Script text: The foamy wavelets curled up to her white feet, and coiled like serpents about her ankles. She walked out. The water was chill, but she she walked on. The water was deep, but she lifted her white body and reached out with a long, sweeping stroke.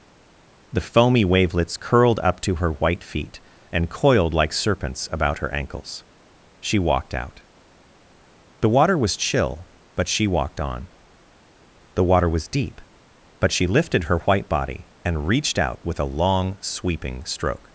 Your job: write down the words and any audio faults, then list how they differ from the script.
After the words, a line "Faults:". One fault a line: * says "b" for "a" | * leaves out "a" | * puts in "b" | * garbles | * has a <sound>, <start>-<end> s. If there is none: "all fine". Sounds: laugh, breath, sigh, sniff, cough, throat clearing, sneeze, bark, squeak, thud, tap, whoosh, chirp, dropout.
The foamy wavelets curled up to her white feet, and coiled like serpents about her ankles. She walked out. The water was chill, but she walked on. The water was deep, but she lifted her white body and reached out with a long, sweeping stroke.
Faults:
* leaves out "she"